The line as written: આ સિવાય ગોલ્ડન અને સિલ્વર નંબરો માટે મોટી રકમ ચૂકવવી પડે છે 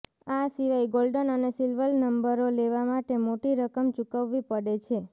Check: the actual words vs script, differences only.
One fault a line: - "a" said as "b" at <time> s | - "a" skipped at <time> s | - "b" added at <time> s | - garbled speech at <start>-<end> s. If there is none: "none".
- "લેવા" added at 2.6 s